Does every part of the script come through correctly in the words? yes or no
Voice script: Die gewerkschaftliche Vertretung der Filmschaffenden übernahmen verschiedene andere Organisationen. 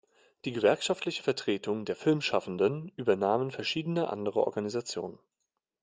yes